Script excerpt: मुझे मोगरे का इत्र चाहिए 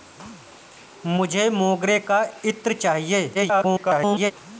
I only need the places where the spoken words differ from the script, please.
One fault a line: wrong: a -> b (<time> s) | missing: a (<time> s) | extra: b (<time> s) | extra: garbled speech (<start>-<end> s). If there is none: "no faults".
extra: garbled speech (3.3-4.3 s)